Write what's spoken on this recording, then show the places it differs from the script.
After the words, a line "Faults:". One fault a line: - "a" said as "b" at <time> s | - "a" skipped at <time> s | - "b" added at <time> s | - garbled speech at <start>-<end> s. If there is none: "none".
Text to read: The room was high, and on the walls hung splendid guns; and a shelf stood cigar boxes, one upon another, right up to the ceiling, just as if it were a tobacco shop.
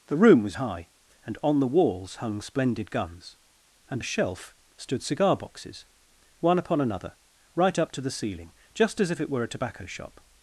The room was high, and on the walls hung splendid guns; and a shelf stood cigar boxes, one upon another, right up to the ceiling, just as if it were a tobacco shop.
Faults:
none